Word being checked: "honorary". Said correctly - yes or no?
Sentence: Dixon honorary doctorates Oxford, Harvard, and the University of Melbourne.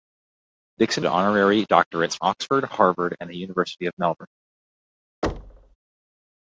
yes